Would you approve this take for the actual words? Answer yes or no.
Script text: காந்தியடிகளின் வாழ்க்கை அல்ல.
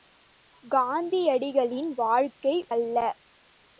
yes